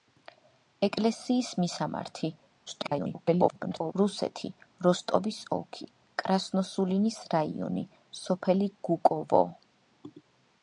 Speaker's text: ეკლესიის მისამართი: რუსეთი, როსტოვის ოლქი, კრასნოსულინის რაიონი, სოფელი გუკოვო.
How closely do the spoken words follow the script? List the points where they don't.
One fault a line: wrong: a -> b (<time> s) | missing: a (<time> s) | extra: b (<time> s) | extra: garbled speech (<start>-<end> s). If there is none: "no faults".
extra: garbled speech (2.7-3.9 s)